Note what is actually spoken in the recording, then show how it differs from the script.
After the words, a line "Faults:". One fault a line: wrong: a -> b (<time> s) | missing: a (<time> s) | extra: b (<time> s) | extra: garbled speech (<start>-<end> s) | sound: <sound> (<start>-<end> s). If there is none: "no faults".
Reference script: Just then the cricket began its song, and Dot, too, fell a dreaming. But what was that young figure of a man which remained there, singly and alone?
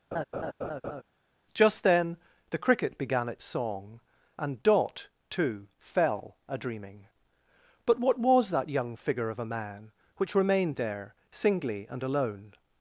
Just then the cricket began its song, and Dot, too, fell a dreaming. But what was that young figure of a man which remained there, singly and alone?
Faults:
sound: laugh (0.1-1.0 s)